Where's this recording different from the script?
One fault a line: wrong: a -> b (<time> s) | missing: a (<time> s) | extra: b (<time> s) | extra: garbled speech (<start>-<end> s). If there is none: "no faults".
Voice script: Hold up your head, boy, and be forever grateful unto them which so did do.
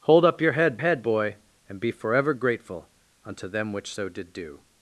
extra: head (0.8 s)